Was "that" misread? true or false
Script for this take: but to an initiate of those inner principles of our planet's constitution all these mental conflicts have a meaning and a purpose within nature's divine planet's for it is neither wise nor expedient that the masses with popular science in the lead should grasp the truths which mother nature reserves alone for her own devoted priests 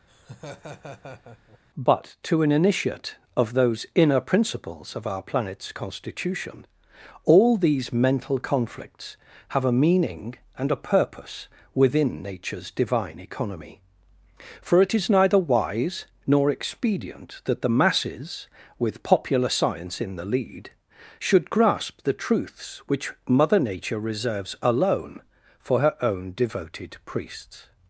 false